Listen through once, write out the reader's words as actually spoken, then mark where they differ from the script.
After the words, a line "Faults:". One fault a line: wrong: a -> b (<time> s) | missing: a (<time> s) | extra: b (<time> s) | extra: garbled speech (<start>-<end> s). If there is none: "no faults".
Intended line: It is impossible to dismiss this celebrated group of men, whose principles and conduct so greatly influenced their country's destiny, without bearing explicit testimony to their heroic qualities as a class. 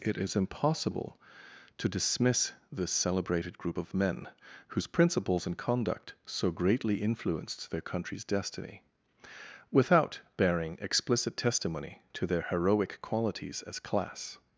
It is impossible to dismiss this celebrated group of men, whose principles and conduct so greatly influenced their country's destiny, without bearing explicit testimony to their heroic qualities as class.
Faults:
missing: a (13.8 s)